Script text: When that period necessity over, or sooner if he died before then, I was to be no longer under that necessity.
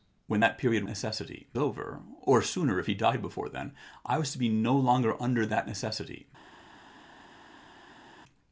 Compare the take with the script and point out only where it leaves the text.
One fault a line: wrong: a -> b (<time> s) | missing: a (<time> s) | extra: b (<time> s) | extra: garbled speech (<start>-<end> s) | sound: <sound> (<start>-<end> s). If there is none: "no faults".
no faults